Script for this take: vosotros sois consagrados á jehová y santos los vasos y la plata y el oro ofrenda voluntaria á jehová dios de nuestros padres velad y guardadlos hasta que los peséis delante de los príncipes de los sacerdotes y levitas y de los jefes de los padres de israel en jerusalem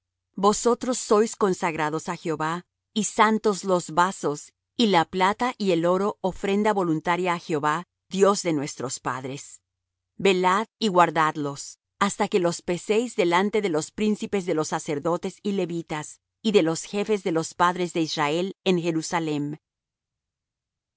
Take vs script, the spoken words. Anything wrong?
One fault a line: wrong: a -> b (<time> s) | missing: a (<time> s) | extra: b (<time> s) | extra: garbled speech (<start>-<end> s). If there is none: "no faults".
no faults